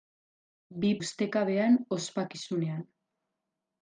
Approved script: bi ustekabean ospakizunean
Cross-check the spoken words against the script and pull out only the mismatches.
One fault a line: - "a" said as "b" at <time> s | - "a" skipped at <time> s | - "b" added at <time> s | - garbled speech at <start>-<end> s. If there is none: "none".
none